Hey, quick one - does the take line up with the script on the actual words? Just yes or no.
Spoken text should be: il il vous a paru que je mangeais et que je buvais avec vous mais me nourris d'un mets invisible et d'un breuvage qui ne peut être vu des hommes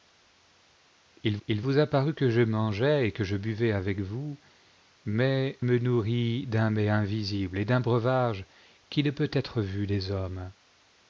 yes